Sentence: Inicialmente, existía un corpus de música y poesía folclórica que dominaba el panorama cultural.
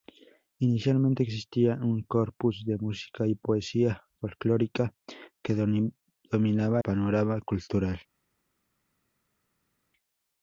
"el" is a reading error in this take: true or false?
true